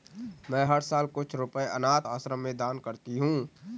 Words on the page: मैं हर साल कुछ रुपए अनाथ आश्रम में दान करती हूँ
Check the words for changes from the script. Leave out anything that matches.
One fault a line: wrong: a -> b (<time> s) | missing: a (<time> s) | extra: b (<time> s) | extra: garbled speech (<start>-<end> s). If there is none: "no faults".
no faults